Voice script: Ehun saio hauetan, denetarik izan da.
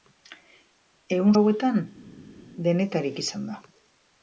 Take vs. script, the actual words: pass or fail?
fail